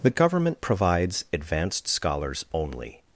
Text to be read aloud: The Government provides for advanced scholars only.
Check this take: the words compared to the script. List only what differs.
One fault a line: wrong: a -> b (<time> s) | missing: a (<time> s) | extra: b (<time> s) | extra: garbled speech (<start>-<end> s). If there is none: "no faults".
missing: for (1.2 s)